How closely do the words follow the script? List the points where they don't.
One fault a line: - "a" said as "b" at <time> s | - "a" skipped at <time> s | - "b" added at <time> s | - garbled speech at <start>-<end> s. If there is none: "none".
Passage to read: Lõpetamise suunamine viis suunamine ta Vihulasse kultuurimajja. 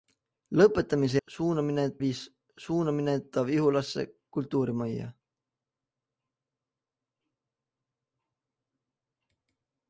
none